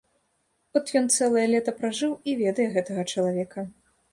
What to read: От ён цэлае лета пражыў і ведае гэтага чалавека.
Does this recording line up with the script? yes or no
yes